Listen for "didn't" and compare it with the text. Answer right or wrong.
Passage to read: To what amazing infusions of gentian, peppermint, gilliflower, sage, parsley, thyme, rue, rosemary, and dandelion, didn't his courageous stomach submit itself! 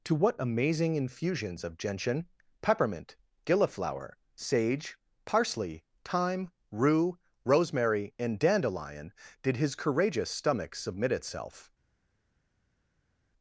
wrong